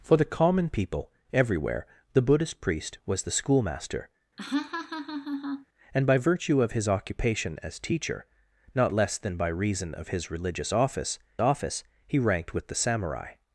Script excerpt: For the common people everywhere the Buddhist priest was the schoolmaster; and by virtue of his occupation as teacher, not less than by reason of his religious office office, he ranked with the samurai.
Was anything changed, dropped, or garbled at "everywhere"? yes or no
no